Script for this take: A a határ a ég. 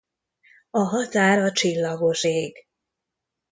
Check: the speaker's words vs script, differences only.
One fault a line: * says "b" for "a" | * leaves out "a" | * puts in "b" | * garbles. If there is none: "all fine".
* leaves out "a"
* puts in "csillagos"